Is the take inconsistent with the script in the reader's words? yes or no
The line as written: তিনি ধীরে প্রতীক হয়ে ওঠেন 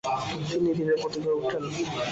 no